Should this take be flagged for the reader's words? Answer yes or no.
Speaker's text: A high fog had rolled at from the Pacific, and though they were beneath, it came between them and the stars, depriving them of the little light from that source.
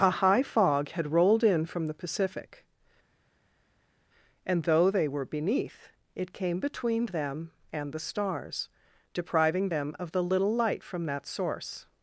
yes